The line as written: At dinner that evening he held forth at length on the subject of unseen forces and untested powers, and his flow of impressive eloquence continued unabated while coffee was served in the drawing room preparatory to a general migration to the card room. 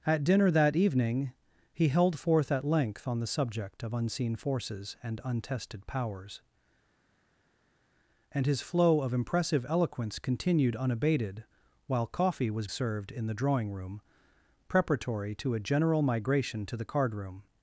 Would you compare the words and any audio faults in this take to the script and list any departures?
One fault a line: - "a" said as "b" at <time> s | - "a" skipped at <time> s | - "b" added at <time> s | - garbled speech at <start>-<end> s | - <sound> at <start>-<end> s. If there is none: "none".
none